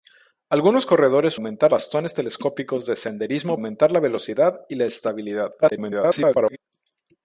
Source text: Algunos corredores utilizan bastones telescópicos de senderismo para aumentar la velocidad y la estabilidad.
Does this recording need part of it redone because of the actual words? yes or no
yes